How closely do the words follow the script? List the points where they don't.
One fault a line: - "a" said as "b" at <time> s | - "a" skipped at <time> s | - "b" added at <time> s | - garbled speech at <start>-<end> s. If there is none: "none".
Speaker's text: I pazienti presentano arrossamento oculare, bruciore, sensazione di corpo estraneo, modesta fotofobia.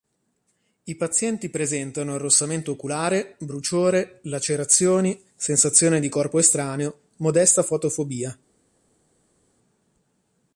- "lacerazioni" added at 4.2 s